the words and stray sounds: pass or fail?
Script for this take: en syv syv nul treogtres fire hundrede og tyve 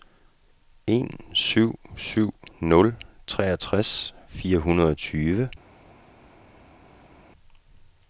pass